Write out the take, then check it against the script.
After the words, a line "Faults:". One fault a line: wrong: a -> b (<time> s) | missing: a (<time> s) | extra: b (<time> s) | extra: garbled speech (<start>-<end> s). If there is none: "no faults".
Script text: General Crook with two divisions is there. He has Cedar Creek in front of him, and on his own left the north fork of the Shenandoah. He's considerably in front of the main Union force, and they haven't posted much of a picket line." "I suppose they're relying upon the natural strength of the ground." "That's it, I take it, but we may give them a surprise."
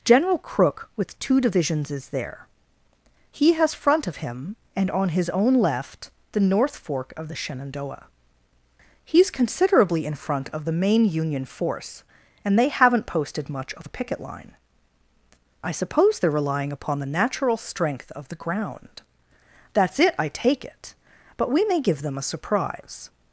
General Crook with two divisions is there. He has front of him, and on his own left the north fork of the Shenandoah. He's considerably in front of the main Union force, and they haven't posted much of a picket line." "I suppose they're relying upon the natural strength of the ground." "That's it, I take it, but we may give them a surprise."
Faults:
missing: Cedar Creek in (3.8 s)